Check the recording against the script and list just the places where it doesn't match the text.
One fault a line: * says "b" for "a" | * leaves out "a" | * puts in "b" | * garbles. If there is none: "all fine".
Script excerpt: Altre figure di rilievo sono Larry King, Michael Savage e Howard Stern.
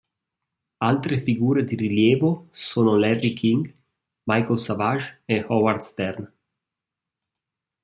all fine